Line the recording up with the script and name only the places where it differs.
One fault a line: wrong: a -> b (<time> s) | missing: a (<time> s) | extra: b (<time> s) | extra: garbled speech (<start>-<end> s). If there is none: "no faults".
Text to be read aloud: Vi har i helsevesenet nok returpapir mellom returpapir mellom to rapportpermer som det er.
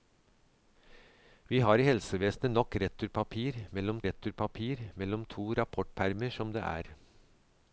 no faults